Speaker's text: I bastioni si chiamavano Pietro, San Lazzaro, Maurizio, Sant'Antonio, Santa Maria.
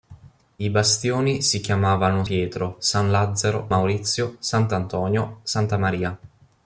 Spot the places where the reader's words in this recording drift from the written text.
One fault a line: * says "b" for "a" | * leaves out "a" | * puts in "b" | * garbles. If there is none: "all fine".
all fine